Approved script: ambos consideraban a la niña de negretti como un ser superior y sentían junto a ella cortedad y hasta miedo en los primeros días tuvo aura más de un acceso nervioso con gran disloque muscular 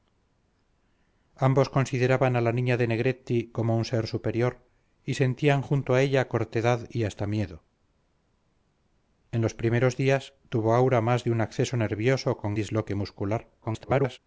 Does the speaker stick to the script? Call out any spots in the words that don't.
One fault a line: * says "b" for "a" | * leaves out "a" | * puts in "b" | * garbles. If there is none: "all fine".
* leaves out "gran"
* garbles